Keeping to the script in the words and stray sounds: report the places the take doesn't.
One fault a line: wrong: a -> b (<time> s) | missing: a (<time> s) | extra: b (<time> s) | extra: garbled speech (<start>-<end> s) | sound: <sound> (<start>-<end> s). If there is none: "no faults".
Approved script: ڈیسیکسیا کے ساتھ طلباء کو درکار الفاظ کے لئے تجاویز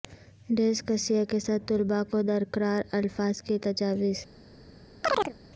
missing: لئے (3.6 s)
sound: chirp (5.0-5.3 s)